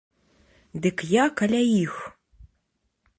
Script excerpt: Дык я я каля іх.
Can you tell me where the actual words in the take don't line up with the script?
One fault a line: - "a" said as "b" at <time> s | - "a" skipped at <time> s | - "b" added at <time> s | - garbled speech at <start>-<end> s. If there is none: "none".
- "я" skipped at 1.2 s